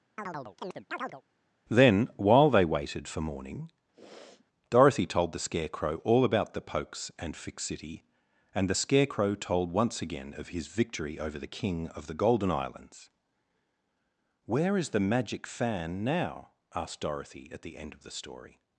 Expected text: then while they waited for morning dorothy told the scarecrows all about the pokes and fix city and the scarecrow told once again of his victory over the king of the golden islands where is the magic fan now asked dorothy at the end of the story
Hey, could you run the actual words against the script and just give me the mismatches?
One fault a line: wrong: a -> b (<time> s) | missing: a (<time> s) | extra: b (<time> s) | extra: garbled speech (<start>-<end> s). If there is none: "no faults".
wrong: scarecrows -> scarecrow (5.4 s)